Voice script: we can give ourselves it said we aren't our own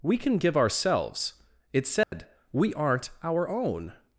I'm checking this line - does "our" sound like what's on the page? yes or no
yes